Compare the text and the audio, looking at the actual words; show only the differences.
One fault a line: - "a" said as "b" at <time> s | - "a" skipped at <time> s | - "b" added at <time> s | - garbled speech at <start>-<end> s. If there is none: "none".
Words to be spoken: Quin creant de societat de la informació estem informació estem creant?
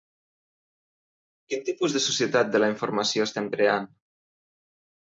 - "creant" said as "tipus" at 1.7 s
- "informació estem" skipped at 3.5 s